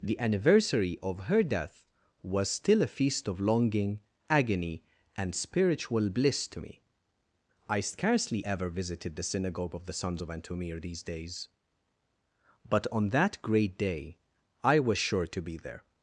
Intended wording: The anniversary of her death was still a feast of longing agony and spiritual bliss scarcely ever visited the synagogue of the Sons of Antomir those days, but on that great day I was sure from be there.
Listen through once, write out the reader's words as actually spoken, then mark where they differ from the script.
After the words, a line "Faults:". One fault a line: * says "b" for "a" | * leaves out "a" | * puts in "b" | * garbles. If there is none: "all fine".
The anniversary of her death was still a feast of longing agony and spiritual bliss to me. I scarcely ever visited the synagogue of the Sons of Antomir these days, but on that great day I was sure to be there.
Faults:
* puts in "to me I"
* says "these" for "those"
* says "to" for "from"